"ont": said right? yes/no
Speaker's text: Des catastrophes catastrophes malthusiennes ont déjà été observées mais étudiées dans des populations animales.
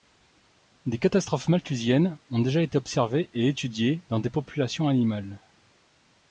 yes